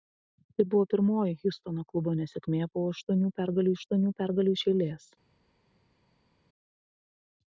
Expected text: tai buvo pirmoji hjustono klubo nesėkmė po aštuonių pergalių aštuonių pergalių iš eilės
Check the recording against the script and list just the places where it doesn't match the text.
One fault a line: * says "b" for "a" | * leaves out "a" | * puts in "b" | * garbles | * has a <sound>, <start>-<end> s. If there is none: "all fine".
all fine